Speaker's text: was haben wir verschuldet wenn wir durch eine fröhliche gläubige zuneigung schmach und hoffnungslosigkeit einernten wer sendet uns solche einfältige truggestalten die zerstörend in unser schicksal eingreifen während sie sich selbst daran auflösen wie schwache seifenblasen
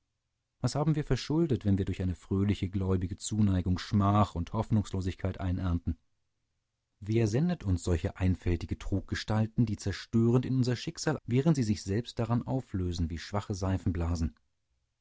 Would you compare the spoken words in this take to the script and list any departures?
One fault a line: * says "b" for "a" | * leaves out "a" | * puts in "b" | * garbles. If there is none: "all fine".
* leaves out "eingreifen"